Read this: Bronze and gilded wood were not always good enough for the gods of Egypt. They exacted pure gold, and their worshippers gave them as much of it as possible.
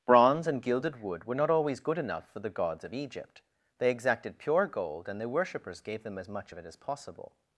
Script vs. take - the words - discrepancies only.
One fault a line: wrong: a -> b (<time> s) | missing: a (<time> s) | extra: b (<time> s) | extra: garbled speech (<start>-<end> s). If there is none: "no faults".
no faults